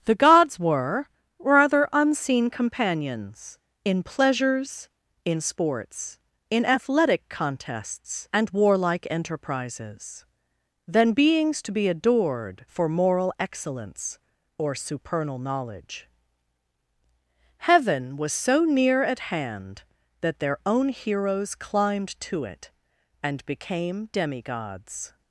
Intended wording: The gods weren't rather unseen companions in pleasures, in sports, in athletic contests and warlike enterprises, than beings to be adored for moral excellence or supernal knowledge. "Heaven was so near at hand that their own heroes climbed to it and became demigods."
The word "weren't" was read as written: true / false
false